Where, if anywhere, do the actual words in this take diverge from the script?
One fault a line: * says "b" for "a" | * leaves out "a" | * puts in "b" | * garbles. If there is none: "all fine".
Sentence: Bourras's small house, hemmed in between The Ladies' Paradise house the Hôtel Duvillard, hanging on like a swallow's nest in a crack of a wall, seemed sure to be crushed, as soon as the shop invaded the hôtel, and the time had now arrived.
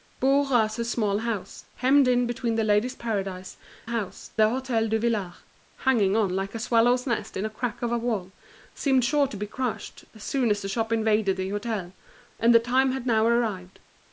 all fine